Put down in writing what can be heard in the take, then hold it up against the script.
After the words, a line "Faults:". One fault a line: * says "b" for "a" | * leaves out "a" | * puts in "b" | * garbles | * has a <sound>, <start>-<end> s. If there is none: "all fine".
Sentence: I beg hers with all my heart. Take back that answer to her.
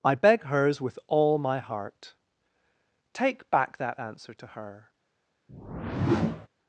I beg hers with all my heart. Take back that answer to her.
Faults:
* has a whoosh, 5.5-6.5 s